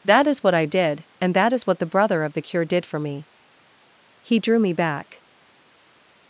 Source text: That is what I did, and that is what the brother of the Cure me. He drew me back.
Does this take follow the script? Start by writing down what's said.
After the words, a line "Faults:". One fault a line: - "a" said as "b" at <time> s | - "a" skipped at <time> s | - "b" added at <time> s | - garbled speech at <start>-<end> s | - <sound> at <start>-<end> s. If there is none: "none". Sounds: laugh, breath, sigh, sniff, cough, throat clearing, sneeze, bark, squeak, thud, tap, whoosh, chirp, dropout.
That is what I did, and that is what the brother of the Cure did for me. He drew me back.
Faults:
- "did for" added at 2.6 s